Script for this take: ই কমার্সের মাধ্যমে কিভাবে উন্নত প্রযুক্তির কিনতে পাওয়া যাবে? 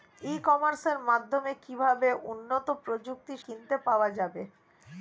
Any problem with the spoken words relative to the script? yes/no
no